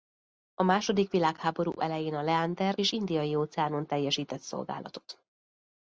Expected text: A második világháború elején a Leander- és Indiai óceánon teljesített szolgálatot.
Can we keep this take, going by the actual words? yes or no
yes